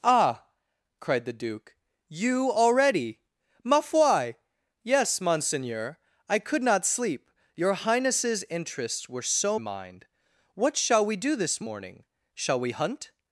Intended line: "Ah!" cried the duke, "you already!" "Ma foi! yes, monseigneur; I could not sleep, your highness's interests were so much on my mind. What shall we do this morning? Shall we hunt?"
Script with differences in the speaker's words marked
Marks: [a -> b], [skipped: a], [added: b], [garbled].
"Ah!" cried the duke, "you already!" "Ma foi! yes, monseigneur; I could not sleep, your highness's interests were so [skipped: much on my] mind. What shall we do this morning? Shall we hunt?"